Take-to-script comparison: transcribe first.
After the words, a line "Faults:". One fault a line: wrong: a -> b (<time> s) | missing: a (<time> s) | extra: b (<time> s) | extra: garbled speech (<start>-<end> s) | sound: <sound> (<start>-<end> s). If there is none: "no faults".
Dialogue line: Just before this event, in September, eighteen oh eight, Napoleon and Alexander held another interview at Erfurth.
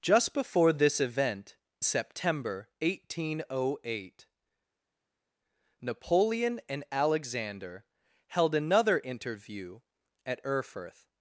Just before this event, September, eighteen oh eight, Napoleon and Alexander held another interview at Erfurth.
Faults:
missing: in (1.6 s)